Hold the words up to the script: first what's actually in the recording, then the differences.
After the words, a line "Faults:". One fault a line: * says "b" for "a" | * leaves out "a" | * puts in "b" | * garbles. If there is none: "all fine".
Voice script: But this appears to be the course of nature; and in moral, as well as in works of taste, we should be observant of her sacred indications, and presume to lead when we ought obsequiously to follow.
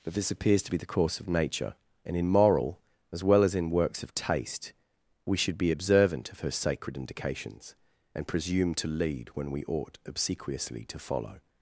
But this appears to be the course of nature; and in moral, as well as in works of taste, we should be observant of her sacred indications, and presume to lead when we ought obsequiously to follow.
Faults:
all fine